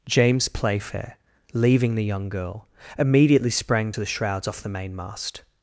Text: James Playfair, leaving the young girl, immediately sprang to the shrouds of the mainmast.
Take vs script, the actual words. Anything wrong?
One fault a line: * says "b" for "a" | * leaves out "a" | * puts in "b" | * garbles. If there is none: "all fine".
* says "off" for "of"